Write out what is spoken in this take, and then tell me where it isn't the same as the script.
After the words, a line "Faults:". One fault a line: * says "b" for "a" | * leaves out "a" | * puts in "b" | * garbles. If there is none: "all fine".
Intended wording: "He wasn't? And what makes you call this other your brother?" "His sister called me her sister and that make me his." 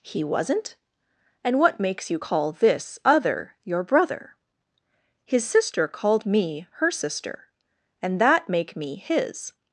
"He wasn't? And what makes you call this other your brother?" "His sister called me her sister and that make me his."
Faults:
all fine